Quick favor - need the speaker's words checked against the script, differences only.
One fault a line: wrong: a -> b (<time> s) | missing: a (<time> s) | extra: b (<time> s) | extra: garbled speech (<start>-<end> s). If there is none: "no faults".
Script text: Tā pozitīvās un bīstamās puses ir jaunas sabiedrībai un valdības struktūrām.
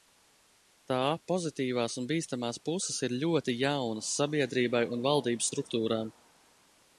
extra: ļoti (3.2 s)